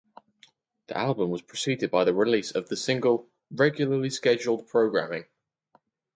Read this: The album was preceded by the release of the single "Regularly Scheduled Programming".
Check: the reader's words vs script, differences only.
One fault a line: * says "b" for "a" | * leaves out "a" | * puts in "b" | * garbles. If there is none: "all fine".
all fine